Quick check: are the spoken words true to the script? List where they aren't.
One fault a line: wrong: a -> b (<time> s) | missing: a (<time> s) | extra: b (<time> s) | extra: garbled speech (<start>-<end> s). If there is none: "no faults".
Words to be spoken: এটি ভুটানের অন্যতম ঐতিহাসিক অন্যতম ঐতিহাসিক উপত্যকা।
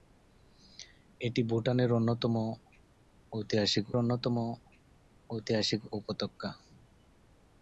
no faults